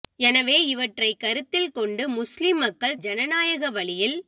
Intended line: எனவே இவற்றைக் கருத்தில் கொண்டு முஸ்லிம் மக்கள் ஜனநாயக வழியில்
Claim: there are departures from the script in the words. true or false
false